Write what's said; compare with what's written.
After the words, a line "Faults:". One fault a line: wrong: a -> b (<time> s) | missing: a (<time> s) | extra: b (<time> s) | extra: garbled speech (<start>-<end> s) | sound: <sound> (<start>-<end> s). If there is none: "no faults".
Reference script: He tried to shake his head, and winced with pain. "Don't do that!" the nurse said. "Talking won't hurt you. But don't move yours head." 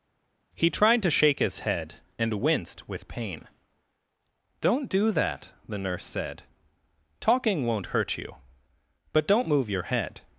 He tried to shake his head, and winced with pain. "Don't do that!" the nurse said. "Talking won't hurt you. But don't move your head."
Faults:
wrong: yours -> your (9.7 s)